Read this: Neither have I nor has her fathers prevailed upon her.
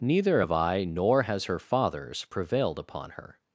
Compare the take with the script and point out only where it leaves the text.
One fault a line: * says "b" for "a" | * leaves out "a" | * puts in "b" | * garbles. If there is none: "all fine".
all fine